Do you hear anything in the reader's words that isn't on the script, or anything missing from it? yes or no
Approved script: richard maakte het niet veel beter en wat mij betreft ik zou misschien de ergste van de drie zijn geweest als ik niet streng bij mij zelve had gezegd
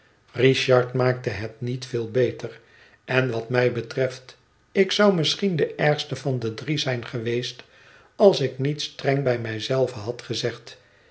no